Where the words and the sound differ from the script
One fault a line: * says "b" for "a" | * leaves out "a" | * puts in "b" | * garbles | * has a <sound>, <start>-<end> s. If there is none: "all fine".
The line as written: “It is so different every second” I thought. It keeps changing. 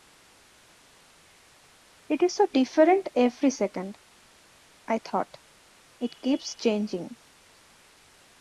all fine